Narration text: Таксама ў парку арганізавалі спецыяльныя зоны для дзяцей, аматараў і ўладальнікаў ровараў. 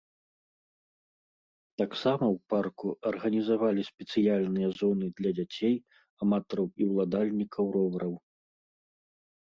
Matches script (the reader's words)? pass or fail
pass